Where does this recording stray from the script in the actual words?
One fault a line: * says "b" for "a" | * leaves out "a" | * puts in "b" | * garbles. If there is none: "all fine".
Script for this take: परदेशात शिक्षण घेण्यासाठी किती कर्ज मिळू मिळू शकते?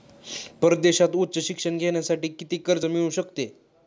* puts in "उच्च"
* leaves out "मिळू"